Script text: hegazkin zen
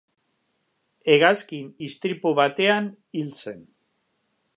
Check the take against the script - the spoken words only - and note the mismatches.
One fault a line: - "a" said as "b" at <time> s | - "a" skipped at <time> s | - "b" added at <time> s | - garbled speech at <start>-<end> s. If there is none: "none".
- "istripu batean hil" added at 1.9 s